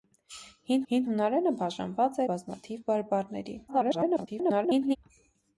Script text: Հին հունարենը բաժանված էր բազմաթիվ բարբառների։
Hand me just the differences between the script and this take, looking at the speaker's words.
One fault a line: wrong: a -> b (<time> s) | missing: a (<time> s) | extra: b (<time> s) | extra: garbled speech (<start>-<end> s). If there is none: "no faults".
extra: հին (0.9 s)
missing: էր (2.2 s)
extra: garbled speech (3.7-5.0 s)